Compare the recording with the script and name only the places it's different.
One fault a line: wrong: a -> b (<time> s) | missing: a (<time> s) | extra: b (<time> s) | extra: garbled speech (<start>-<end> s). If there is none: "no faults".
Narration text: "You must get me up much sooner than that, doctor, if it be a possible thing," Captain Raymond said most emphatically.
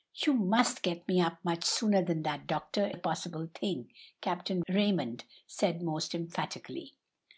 missing: if it be (2.9 s)